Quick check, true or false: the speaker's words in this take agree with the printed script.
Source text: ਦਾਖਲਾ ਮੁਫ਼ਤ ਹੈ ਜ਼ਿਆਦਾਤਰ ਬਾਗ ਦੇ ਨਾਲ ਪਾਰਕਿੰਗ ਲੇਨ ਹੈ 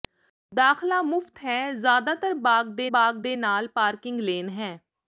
false